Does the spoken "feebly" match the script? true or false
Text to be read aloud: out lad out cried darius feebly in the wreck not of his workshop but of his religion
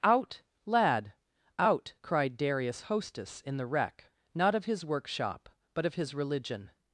false